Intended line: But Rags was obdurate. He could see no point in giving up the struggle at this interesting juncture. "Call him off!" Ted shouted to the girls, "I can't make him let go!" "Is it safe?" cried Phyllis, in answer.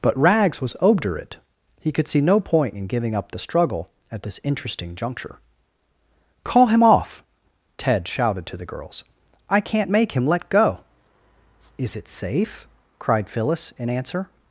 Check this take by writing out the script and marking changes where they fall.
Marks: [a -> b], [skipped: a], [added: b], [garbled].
But Rags was obdurate. He could see no point in giving up the struggle at this interesting juncture. "Call him off!" Ted shouted to the girls, "I can't make him let go!" "Is it safe?" cried Phyllis, in answer.